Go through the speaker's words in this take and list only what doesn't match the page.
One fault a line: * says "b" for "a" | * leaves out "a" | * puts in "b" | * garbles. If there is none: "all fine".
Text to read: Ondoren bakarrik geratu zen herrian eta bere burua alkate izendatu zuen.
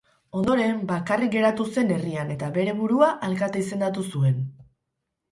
all fine